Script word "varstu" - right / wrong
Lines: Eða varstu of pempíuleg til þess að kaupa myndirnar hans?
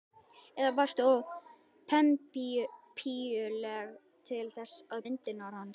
right